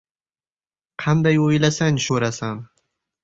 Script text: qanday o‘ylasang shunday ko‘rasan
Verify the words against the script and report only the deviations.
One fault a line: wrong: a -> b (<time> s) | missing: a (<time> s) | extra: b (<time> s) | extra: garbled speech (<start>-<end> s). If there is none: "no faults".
missing: shunday (2.0 s)